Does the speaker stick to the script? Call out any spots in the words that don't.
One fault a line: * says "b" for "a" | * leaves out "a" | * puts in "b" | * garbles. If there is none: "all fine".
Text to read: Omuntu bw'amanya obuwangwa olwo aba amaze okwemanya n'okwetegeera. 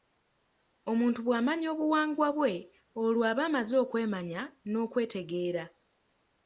* puts in "bwe"